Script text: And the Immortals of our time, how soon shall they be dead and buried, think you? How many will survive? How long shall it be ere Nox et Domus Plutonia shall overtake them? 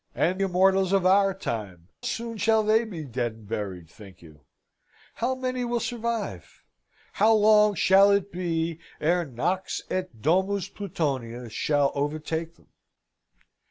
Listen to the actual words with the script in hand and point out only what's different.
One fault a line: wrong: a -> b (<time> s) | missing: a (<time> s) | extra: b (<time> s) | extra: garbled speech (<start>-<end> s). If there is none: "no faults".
missing: the (0.4 s)
missing: how (1.9 s)